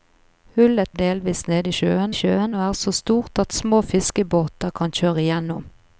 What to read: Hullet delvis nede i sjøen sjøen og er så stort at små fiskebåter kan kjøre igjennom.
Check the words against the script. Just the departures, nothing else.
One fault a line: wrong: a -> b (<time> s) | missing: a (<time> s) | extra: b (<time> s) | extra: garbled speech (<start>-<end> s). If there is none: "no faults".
no faults